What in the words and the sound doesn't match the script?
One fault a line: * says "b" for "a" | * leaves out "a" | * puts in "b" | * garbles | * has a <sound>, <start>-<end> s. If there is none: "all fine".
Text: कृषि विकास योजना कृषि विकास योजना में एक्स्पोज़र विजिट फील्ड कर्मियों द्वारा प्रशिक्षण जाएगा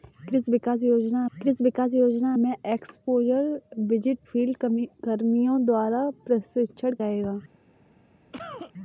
* has a cough, 8.3-8.7 s